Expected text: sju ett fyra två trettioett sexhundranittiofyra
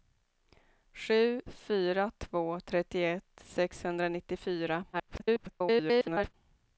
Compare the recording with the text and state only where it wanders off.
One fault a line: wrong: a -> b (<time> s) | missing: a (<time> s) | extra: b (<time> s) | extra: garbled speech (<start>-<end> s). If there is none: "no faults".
missing: ett (1.4 s)
extra: garbled speech (4.9-6.3 s)